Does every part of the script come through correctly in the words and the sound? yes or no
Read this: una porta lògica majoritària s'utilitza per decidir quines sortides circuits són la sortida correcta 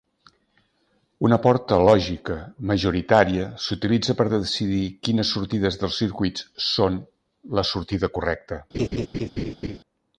no